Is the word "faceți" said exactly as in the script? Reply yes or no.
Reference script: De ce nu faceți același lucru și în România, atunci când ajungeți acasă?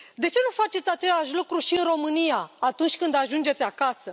yes